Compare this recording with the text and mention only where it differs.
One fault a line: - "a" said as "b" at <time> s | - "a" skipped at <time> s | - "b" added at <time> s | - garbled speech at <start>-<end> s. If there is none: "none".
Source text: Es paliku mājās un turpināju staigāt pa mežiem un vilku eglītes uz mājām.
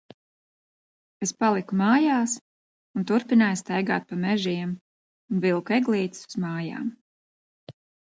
none